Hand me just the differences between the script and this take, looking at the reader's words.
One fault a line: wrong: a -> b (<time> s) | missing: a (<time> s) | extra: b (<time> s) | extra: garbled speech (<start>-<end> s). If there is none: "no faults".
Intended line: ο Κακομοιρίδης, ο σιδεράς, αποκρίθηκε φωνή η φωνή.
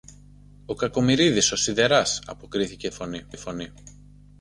no faults